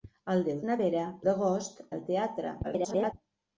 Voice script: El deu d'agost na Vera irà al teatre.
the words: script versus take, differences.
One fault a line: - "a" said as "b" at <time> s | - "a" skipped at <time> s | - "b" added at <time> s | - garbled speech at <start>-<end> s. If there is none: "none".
- "d'agost" skipped at 0.6 s
- "irà" said as "d'agost" at 1.3 s
- garbled speech at 2.6-3.1 s